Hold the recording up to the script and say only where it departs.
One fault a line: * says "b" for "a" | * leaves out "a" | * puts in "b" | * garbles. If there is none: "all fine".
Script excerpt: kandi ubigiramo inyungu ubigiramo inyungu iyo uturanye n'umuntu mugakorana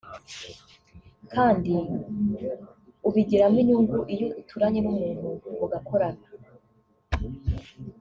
* leaves out "ubigiramo inyungu"